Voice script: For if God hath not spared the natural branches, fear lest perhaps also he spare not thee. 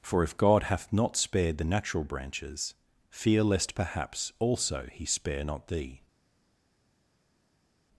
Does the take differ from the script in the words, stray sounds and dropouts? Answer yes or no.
no